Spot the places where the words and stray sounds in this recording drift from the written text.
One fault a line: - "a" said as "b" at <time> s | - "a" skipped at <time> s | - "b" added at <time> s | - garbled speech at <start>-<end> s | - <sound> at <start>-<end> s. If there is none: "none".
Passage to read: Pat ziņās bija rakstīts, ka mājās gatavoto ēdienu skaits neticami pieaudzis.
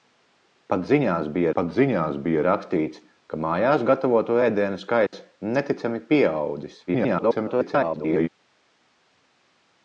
- "pat ziņās bija" added at 1.6 s
- dropout at 5.1-5.1 s
- garbled speech at 6.9-8.3 s